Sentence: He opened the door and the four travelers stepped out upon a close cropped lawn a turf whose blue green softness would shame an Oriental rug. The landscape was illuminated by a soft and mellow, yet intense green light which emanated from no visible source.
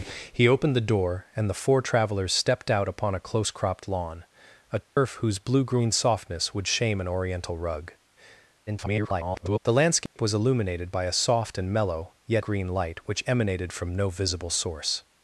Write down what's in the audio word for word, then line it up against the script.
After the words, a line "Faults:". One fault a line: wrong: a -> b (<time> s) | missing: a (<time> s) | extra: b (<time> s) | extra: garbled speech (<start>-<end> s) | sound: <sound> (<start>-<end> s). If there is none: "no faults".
He opened the door and the four travelers stepped out upon a close cropped lawn a turf whose blue green softness would shame an Oriental rug. [garbled] The landscape was illuminated by a soft and mellow, yet green light which emanated from no visible source.
Faults:
sound: dropout (4.8-5.0 s)
extra: garbled speech (8.7-9.6 s)
sound: dropout (10.1-10.2 s)
missing: intense (12.4 s)